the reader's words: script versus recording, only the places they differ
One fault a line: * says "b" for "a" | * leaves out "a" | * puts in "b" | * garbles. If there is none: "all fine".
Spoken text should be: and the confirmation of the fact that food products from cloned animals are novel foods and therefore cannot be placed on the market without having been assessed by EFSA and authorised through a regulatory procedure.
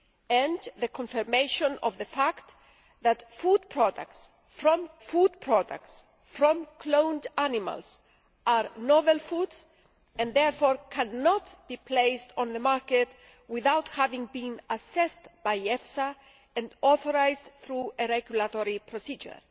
* puts in "food products from"